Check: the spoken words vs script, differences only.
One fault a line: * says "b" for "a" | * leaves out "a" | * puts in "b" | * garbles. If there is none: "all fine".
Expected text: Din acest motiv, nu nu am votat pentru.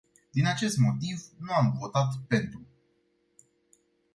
* leaves out "nu"